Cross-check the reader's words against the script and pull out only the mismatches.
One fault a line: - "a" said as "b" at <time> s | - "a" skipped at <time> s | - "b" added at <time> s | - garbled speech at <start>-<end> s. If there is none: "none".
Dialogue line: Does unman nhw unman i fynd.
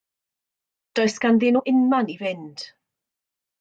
- "unman" said as "ganddyn" at 1.3 s